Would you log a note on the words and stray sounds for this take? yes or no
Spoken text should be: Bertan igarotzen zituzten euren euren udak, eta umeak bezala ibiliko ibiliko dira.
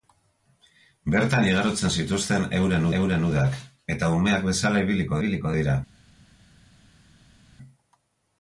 no